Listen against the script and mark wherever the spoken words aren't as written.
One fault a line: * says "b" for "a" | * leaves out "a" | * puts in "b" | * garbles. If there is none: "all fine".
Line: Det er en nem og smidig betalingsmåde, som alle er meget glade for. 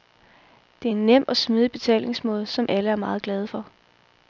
all fine